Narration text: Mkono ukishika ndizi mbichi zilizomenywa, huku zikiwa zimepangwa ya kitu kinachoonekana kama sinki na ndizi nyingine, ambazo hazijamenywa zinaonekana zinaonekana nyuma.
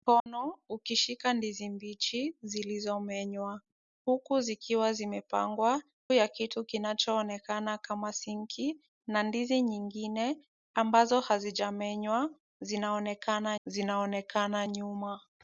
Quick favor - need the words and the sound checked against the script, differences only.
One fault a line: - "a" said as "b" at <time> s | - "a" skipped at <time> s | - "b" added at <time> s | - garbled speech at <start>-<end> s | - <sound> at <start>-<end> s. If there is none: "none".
- dropout at 0.2-0.3 s